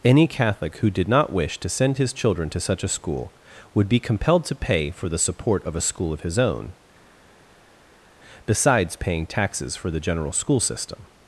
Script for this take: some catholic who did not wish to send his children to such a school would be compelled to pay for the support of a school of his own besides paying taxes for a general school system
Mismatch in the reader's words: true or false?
true